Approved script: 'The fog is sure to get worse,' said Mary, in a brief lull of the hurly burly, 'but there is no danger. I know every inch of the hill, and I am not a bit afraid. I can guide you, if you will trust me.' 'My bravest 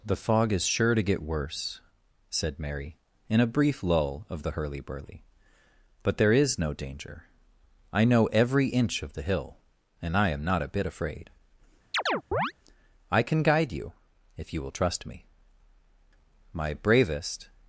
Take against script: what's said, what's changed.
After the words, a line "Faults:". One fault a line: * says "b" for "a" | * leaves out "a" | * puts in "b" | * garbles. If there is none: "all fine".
'The fog is sure to get worse,' said Mary, in a brief lull of the hurly burly, 'but there is no danger. I know every inch of the hill, and I am not a bit afraid. I can guide you, if you will trust me.' 'My bravest
Faults:
all fine